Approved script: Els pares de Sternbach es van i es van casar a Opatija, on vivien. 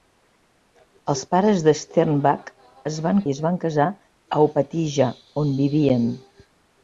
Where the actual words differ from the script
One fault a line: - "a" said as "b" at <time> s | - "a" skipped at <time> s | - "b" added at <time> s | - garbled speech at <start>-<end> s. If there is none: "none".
none